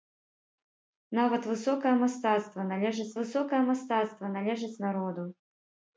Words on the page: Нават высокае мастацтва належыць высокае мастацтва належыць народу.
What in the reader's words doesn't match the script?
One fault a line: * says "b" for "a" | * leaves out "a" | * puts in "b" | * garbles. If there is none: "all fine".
all fine